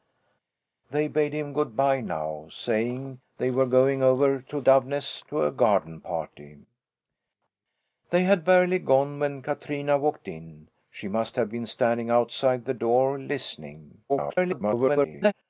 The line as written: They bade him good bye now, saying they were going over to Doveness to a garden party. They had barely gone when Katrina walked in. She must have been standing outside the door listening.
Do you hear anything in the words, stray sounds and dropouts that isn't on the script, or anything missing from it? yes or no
yes